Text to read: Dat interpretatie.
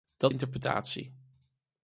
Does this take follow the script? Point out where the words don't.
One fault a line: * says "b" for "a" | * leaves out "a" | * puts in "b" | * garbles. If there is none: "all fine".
all fine